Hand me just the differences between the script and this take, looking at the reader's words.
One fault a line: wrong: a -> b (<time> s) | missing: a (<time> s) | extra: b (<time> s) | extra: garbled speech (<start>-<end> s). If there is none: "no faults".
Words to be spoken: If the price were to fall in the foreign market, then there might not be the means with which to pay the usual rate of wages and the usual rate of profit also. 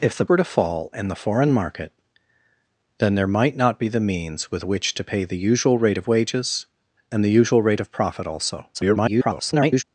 missing: price (0.2 s)
extra: garbled speech (8.7-9.8 s)